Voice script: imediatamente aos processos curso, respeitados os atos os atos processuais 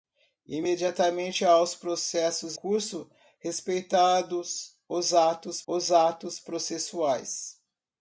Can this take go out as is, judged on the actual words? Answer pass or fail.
pass